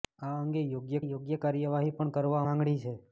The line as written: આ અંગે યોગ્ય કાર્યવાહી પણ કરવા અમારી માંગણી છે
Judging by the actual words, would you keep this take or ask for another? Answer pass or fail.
fail